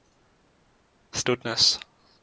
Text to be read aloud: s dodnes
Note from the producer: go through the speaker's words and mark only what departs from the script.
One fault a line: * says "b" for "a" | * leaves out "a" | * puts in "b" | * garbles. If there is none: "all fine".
all fine